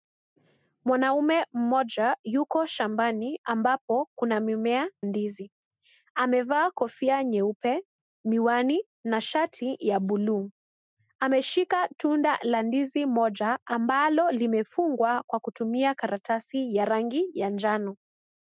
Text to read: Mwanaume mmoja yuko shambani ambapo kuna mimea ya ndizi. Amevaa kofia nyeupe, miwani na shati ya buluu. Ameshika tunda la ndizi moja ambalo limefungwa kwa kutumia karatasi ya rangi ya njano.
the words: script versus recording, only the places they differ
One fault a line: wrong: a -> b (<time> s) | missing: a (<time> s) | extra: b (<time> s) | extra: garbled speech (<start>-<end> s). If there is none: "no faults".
missing: ya (4.9 s)